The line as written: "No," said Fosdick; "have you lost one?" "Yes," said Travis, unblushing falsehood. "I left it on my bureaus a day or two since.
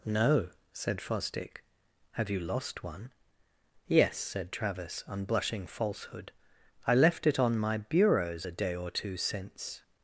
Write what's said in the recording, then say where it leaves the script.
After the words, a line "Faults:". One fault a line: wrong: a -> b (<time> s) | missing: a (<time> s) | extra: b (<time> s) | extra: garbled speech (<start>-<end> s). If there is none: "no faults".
"No," said Fosdick; "have you lost one?" "Yes," said Travis, unblushing falsehood. "I left it on my bureaus a day or two since.
Faults:
no faults